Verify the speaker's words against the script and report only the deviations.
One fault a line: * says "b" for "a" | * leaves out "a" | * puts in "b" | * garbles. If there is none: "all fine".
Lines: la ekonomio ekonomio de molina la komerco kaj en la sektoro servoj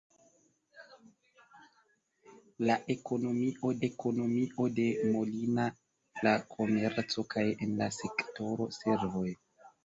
all fine